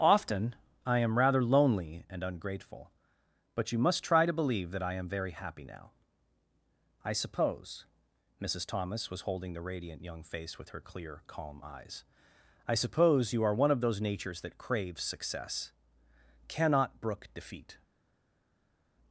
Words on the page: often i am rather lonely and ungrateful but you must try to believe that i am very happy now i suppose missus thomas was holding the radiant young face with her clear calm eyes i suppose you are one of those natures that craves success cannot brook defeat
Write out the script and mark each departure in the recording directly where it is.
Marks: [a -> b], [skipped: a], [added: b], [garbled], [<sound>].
often i am rather lonely and ungrateful but you must try to believe that i am very happy now i suppose missus thomas was holding the radiant young face with her clear calm eyes i suppose you are one of those natures that craves success cannot brook defeat